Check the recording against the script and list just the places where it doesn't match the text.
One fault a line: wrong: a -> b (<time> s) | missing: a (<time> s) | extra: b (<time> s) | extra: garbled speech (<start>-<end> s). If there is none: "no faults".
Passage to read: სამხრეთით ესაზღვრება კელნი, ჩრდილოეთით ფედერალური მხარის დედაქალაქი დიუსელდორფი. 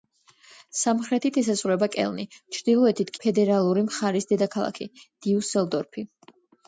no faults